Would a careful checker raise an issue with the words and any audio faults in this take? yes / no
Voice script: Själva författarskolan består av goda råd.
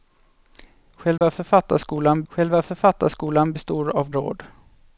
yes